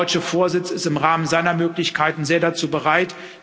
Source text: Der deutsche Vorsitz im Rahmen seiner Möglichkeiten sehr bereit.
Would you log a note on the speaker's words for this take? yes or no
yes